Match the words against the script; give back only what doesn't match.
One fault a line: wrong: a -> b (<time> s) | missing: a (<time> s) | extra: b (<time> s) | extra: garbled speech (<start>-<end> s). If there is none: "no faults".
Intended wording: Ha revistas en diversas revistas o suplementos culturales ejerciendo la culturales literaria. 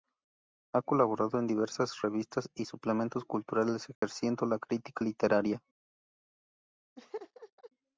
wrong: revistas -> colaborado (0.8 s)
wrong: o -> y (2.5 s)
wrong: culturales -> crítica (4.6 s)